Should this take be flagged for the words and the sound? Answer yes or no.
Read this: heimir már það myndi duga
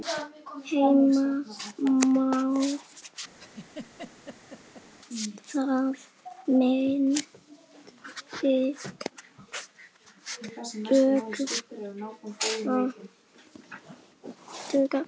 yes